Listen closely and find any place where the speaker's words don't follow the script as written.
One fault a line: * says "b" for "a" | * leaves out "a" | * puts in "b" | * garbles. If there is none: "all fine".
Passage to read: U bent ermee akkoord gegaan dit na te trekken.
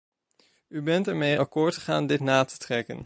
all fine